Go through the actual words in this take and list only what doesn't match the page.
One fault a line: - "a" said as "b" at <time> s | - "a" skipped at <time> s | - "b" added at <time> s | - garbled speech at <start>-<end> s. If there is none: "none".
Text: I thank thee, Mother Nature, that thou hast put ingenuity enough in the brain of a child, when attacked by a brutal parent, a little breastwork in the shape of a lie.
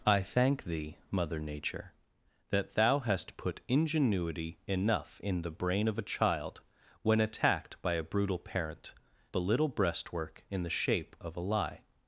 none